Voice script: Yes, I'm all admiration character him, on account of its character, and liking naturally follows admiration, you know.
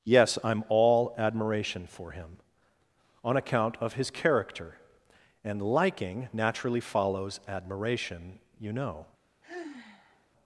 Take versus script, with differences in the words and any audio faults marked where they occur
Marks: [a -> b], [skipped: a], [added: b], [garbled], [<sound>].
Yes, I'm all admiration [character -> for] him, on account of [its -> his] character, and liking naturally follows admiration, you know. [sigh]